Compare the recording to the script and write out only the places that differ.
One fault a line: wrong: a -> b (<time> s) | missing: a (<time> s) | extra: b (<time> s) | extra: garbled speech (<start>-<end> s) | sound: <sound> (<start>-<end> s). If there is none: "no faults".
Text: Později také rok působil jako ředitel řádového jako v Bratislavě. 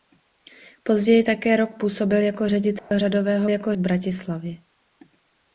sound: dropout (2.8-2.9 s)